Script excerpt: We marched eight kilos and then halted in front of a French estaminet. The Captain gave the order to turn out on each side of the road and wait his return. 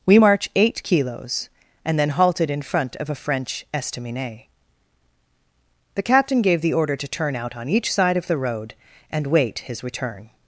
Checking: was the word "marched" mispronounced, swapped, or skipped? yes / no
yes